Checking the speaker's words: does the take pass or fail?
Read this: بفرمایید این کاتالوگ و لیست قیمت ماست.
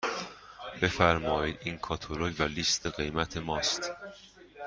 pass